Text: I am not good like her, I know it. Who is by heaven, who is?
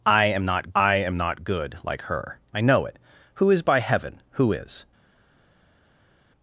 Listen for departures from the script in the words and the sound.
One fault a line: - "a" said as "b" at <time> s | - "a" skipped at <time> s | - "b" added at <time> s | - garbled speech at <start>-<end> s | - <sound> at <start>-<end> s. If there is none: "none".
- "I am not" added at 0.7 s